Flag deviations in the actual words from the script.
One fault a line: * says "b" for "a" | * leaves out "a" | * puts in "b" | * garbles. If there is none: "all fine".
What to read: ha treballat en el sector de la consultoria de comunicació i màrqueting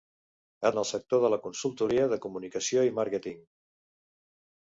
* leaves out "treballat"